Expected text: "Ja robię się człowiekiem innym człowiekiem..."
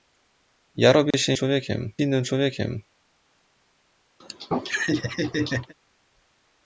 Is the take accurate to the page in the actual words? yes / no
yes